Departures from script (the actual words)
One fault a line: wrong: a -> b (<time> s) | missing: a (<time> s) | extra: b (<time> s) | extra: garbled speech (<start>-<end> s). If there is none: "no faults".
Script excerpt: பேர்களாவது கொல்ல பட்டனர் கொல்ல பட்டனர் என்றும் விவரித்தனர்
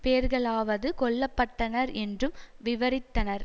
missing: கொல்ல பட்டனர் (1.9 s)